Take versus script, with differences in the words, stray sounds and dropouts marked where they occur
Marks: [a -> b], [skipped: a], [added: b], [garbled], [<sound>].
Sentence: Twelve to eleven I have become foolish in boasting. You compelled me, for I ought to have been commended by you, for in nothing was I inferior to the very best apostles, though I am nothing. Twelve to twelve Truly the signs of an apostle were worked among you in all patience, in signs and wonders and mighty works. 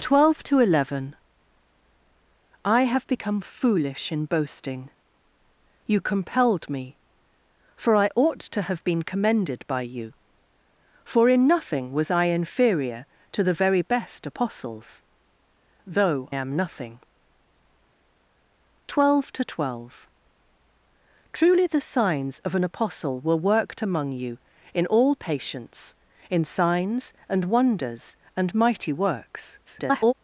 Twelve to eleven I have become foolish in boasting. You compelled me, for I ought to have been commended by you, for in nothing was I inferior to the very best apostles, though [skipped: I] am nothing. Twelve to twelve Truly the signs of an apostle were worked among you in all patience, in signs and wonders and mighty works. [garbled]